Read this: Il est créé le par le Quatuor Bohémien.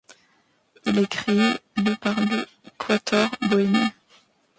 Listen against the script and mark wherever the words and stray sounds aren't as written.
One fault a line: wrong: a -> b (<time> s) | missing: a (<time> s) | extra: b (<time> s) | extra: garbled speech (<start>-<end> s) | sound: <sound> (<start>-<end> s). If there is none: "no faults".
no faults